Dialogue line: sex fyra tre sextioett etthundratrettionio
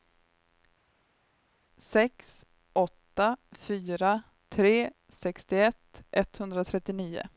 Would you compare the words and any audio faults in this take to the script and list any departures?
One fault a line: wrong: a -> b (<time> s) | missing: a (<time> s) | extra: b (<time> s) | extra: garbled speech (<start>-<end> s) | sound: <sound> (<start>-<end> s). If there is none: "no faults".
extra: åtta (2.7 s)